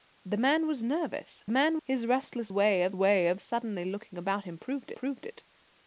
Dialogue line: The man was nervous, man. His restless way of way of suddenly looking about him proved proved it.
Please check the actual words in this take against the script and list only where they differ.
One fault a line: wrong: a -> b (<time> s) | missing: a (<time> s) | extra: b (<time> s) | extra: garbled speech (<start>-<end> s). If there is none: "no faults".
no faults